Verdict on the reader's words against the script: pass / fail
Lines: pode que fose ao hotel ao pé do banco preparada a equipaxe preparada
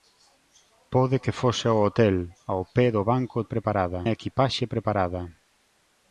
pass